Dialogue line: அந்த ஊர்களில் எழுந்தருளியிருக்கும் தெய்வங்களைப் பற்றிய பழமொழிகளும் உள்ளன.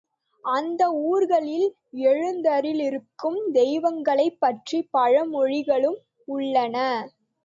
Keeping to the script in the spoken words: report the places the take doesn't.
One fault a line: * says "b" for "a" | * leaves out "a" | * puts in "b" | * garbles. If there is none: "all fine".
all fine